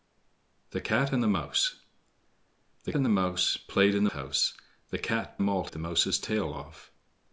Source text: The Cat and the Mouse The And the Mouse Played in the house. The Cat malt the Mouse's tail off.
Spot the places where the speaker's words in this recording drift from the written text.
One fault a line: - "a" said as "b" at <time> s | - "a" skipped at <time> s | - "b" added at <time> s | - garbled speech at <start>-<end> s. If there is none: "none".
none